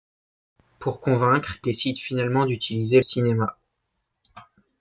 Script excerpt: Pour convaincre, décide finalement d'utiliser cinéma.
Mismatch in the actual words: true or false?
false